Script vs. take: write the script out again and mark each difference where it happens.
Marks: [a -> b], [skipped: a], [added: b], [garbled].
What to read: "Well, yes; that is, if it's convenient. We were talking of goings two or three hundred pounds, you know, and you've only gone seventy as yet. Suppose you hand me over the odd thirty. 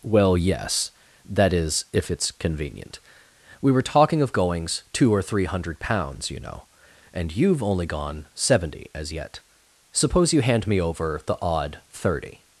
"Well, yes; that is, if it's convenient. We were talking of goings two or three hundred pounds, you know, and you've only gone seventy as yet. Suppose you hand me over the odd thirty.